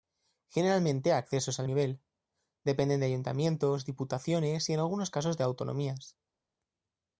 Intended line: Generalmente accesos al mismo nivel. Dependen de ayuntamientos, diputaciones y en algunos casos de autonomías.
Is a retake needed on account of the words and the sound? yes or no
yes